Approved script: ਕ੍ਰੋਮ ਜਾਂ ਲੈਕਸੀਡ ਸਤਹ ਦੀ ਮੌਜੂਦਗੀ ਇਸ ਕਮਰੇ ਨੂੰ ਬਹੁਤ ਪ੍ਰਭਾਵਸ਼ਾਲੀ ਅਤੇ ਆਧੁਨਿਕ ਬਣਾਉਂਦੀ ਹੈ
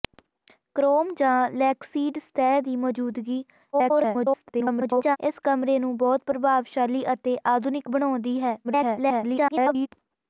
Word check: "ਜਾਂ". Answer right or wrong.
right